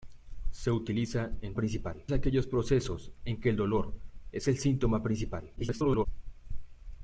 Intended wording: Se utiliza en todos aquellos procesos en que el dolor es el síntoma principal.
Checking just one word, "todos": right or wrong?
wrong